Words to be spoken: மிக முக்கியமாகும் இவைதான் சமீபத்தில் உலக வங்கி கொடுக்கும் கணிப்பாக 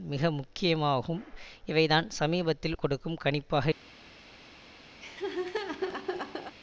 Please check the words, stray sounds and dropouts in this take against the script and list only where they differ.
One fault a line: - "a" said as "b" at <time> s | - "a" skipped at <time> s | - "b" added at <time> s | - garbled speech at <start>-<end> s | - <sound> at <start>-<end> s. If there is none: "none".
- "உலக வங்கி" skipped at 2.8 s
- laugh at 5.0-6.5 s